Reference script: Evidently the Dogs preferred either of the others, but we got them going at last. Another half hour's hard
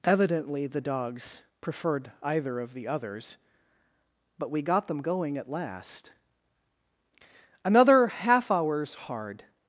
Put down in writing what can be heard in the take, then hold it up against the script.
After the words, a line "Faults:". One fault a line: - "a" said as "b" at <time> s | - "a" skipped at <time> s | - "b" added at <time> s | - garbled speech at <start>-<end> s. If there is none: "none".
Evidently the Dogs preferred either of the others, but we got them going at last. Another half hour's hard
Faults:
none